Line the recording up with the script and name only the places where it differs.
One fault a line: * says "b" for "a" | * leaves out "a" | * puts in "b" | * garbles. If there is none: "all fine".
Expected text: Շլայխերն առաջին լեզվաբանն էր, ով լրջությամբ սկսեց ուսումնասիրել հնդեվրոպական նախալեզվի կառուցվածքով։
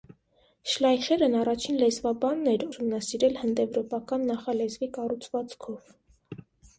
* leaves out "ով լրջությամբ սկսեց"